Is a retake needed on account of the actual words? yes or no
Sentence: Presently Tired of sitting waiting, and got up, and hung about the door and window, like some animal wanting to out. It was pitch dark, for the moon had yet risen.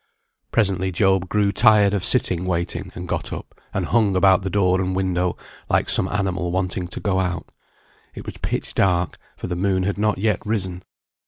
yes